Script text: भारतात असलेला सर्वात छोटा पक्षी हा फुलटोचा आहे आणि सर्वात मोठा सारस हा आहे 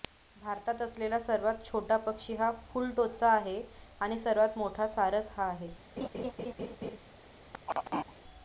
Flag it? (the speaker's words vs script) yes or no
no